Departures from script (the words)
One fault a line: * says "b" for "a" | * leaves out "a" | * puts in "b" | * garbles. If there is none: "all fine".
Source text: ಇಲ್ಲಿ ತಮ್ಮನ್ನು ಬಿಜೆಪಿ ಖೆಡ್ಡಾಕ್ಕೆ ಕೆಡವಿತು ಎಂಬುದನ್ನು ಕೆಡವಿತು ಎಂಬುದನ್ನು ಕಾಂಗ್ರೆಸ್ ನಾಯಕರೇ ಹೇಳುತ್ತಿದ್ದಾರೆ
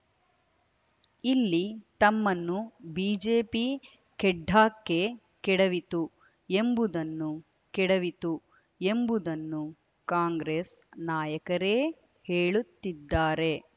all fine